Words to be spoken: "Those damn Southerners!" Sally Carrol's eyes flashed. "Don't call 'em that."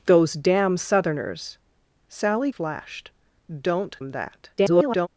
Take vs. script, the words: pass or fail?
fail